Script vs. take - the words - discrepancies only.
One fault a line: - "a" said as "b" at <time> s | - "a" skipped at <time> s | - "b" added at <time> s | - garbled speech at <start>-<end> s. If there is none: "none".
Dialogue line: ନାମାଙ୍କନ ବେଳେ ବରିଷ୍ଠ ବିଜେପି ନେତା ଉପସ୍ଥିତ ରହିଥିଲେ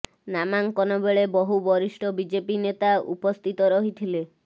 - "ବହୁ" added at 1.4 s